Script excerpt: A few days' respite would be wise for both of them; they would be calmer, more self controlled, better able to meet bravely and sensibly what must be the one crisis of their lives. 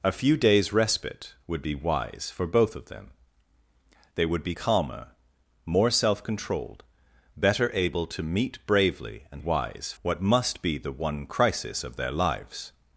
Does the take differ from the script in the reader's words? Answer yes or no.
yes